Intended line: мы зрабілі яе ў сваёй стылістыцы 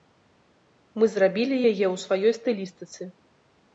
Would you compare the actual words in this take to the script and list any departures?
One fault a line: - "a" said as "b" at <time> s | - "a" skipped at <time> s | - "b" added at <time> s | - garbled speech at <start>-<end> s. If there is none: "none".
none